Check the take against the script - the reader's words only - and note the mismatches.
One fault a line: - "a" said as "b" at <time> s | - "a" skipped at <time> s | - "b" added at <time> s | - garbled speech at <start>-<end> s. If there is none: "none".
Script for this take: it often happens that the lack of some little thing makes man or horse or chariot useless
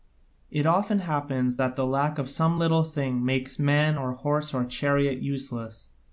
none